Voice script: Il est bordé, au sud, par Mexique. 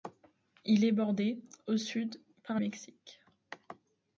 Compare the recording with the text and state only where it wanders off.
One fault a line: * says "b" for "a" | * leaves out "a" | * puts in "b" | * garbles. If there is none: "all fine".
all fine